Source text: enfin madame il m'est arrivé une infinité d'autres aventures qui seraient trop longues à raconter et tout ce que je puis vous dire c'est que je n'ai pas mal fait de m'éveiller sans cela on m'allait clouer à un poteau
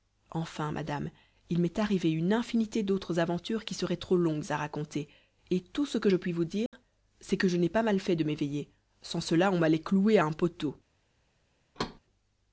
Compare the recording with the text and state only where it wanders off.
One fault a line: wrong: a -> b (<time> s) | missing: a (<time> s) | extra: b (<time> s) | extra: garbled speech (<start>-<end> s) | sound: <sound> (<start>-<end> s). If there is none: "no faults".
sound: dropout (6.7-6.7 s)
sound: thud (11.7-12.0 s)